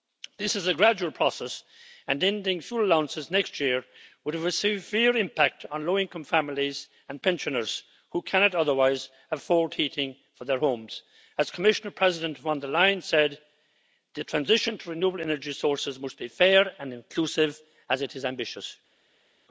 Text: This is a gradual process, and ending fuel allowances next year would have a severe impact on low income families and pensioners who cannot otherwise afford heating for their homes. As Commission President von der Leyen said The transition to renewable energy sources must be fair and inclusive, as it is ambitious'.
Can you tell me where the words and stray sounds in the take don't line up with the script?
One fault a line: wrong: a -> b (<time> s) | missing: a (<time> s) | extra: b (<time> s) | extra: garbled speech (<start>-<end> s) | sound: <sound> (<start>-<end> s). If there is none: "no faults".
no faults